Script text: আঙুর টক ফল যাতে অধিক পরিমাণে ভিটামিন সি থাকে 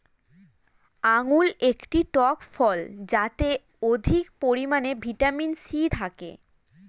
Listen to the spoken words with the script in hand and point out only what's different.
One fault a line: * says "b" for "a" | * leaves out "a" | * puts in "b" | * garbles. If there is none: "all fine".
* puts in "একটি"